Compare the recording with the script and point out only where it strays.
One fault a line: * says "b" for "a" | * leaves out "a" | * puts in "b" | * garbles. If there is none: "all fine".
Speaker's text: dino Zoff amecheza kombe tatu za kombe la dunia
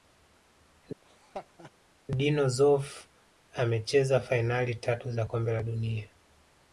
* says "fainali" for "kombe"